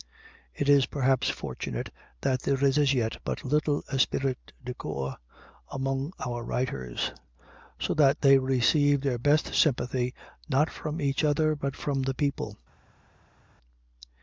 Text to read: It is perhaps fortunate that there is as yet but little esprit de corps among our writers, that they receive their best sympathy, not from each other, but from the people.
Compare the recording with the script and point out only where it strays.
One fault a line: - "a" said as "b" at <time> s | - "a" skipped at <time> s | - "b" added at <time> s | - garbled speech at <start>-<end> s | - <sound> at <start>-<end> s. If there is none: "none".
- "so" added at 7.8 s